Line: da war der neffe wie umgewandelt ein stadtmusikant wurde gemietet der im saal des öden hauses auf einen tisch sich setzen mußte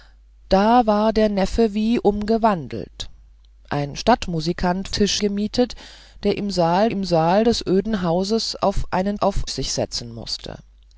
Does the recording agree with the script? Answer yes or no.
no